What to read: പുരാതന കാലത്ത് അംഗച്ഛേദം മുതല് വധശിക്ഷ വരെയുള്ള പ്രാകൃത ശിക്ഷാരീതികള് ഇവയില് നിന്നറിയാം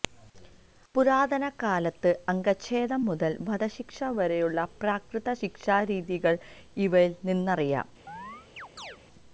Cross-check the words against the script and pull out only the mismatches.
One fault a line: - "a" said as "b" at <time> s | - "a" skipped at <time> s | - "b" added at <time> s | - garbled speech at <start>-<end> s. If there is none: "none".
none